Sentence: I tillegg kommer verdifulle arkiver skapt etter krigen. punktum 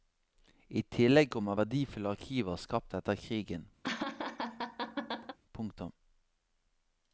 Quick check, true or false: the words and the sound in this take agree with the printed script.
false